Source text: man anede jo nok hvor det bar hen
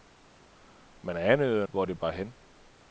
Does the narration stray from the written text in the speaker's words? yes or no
yes